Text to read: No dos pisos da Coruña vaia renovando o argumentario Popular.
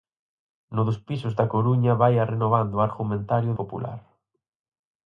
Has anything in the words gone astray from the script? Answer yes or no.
no